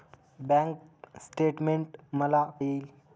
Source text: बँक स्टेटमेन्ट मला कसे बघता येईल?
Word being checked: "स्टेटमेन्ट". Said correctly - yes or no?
yes